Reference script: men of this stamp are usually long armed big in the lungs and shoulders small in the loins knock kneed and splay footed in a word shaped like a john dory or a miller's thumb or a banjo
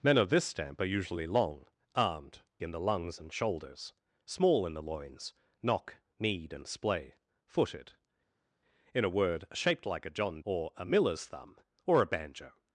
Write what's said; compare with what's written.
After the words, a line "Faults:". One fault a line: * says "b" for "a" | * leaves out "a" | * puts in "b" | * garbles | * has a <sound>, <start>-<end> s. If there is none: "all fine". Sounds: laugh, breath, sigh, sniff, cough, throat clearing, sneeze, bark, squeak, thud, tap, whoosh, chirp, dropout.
men of this stamp are usually long armed in the lungs and shoulders small in the loins knock kneed and splay footed in a word shaped like a john or a miller's thumb or a banjo
Faults:
* leaves out "big"
* leaves out "dory"